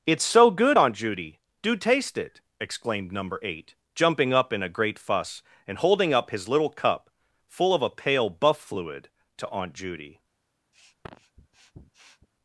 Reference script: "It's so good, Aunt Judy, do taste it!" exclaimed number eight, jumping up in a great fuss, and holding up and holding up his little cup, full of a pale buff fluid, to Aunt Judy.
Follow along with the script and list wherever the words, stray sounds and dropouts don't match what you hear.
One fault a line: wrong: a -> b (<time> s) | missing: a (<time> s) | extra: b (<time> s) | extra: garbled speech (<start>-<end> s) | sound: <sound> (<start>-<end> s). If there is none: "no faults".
missing: and holding up (6.3 s)
sound: sniff (10.7-12.3 s)